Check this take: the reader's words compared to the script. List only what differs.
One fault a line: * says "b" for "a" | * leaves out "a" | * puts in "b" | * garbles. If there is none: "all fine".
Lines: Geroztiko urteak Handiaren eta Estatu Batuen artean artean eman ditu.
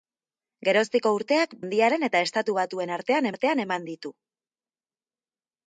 all fine